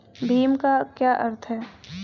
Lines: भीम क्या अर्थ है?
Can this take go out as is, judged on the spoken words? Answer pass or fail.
fail